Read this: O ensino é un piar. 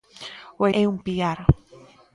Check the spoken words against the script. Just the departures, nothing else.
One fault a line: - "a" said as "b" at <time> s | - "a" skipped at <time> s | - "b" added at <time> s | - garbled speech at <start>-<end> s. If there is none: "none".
- "ensino" skipped at 0.6 s